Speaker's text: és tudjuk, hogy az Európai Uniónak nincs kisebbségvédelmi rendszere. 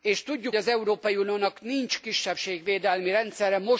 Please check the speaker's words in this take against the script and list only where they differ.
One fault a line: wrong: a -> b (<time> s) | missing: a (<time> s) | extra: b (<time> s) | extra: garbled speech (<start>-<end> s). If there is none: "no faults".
missing: hogy (0.6 s)